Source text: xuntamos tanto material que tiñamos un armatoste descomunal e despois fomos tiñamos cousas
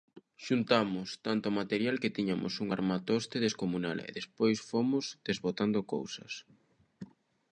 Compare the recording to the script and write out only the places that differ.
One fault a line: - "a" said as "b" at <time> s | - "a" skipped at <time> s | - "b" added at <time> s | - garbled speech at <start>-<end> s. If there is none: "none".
- "tiñamos" said as "desbotando" at 5.3 s